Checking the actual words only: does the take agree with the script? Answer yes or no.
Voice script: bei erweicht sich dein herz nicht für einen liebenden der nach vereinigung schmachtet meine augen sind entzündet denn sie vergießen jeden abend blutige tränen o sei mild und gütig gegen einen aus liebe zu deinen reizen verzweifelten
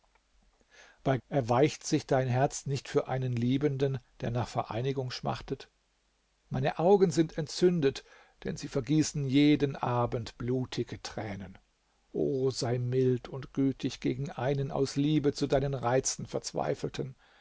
yes